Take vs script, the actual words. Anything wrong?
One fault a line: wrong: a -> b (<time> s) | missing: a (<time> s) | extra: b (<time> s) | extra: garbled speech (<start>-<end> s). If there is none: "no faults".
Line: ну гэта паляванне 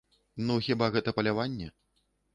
extra: хіба (0.7 s)